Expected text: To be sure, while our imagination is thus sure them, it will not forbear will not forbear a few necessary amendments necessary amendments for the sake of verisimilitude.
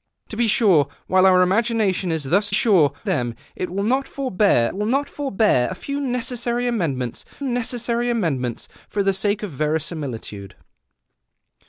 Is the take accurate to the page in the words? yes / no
yes